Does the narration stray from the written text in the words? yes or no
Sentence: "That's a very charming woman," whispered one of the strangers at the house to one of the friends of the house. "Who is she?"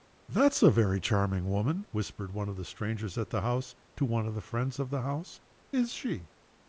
yes